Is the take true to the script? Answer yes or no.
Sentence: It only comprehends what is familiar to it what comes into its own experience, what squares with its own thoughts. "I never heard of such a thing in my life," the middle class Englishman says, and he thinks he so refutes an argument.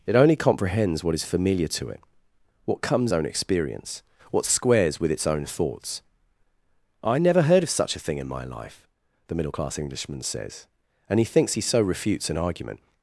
no